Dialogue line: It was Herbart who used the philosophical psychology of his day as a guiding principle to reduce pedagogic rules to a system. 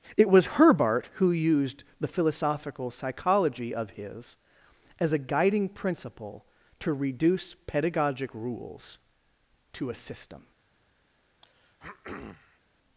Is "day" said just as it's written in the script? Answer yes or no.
no